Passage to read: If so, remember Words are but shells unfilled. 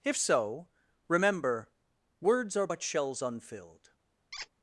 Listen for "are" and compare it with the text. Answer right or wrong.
right